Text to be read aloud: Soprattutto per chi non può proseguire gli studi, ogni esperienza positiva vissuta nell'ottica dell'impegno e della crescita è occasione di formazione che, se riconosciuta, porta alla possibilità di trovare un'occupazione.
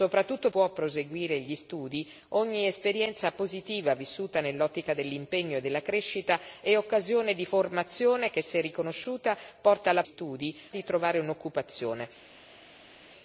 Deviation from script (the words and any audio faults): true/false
true